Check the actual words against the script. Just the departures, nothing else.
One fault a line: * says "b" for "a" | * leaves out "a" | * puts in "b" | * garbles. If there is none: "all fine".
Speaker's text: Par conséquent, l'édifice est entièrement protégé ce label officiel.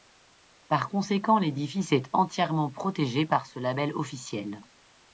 * puts in "par"